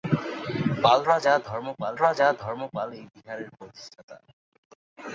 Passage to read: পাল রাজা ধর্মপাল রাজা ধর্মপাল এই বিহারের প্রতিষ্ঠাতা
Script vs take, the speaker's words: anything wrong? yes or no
no